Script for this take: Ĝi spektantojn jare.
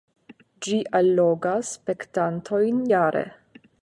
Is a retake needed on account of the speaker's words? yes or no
yes